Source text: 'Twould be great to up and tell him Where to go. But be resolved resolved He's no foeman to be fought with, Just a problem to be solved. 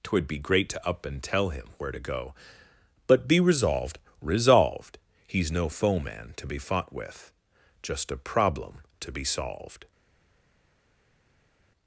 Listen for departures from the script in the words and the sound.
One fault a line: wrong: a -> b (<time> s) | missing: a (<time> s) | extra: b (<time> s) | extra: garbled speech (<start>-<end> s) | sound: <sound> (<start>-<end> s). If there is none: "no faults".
no faults